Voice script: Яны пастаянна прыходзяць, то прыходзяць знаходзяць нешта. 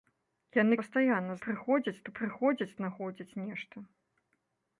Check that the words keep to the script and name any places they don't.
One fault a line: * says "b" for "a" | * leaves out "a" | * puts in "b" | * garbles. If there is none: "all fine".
all fine